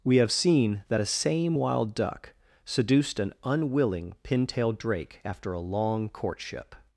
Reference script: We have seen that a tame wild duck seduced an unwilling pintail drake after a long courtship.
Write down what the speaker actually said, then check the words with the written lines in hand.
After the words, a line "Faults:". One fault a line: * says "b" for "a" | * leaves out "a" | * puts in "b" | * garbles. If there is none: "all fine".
We have seen that a same wild duck seduced an unwilling pintail drake after a long courtship.
Faults:
* says "same" for "tame"